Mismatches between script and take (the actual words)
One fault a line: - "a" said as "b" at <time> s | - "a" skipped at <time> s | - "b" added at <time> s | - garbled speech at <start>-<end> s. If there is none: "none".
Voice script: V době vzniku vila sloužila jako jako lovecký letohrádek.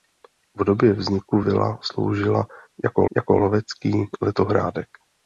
none